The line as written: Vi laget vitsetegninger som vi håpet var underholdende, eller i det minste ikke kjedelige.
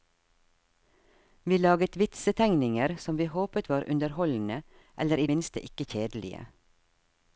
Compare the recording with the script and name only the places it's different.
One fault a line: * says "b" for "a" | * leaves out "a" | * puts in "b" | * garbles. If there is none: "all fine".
* leaves out "det"